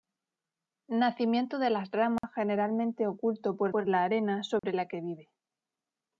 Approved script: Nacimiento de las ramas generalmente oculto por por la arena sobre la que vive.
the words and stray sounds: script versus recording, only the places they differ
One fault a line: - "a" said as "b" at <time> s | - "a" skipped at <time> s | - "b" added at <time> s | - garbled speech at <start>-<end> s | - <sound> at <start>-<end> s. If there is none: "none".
- dropout at 2.2-2.2 s
- dropout at 4.6-4.6 s